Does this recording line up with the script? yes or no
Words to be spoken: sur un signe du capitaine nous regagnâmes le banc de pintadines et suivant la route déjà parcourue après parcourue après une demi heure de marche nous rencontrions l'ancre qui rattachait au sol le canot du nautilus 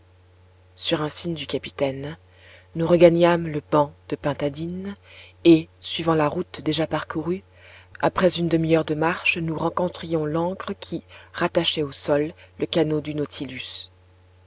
no